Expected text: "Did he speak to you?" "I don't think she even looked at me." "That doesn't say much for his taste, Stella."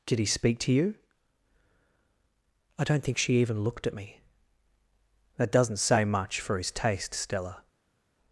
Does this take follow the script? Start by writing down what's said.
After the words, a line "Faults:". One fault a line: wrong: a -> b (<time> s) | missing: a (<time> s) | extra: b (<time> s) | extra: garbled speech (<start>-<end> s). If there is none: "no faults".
"Did he speak to you?" "I don't think she even looked at me." "That doesn't say much for his taste, Stella."
Faults:
no faults